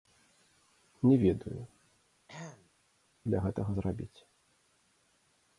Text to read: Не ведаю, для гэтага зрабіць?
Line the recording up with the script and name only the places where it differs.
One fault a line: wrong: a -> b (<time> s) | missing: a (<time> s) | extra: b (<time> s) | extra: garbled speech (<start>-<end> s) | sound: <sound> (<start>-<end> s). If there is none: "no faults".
sound: throat clearing (2.3-2.7 s)